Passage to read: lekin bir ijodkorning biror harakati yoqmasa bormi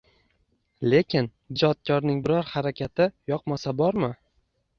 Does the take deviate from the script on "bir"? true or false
true